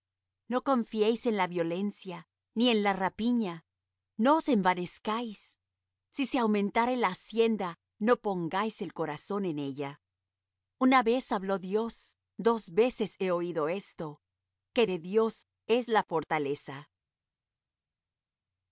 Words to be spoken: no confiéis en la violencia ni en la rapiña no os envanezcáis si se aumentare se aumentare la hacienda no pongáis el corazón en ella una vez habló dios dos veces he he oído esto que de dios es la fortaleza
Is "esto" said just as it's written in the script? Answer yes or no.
yes